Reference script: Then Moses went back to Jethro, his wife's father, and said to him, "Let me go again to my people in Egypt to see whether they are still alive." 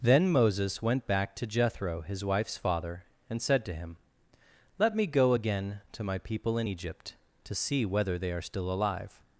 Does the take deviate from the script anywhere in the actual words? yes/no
no